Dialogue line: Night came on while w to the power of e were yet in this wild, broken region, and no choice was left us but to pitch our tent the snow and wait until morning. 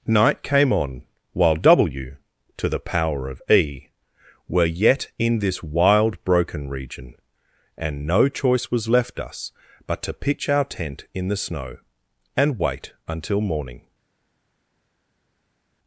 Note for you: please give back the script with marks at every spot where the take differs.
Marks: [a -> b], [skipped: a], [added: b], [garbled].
Night came on while w to the power of e were yet in this wild, broken region, and no choice was left us but to pitch our tent [added: in] the snow and wait until morning.